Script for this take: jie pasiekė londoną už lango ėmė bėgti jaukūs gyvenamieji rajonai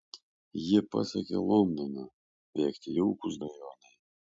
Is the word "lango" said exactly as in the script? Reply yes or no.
no